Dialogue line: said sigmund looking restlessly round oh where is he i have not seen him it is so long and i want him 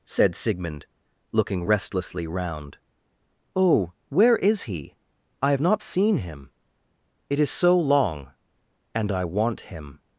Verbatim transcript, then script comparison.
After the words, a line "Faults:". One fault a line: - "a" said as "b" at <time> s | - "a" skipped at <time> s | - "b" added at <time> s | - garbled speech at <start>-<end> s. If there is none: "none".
said sigmund looking restlessly round oh where is he i have not seen him it is so long and i want him
Faults:
none